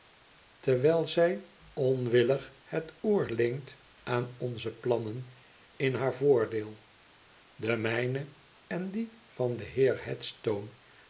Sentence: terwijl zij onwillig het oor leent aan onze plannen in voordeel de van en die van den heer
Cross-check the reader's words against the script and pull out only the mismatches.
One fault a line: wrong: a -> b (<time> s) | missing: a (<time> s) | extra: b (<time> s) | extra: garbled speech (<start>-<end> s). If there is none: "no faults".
extra: haar (5.9 s)
wrong: van -> mijne (7.8 s)